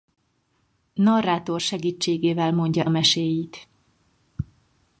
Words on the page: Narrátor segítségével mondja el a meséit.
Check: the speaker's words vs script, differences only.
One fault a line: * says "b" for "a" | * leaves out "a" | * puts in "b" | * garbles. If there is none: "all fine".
* leaves out "el"